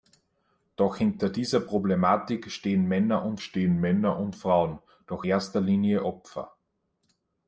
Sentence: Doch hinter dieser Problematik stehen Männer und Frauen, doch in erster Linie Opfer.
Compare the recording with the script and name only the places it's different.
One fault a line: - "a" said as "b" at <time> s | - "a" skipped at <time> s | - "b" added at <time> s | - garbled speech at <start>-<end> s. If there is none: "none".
- "stehen Männer und" added at 3.4 s
- "in" skipped at 5.3 s